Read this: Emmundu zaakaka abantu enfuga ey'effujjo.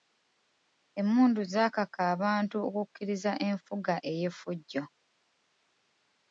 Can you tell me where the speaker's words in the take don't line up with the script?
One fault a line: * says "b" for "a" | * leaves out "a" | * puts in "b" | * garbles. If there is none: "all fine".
* puts in "okukkiriza"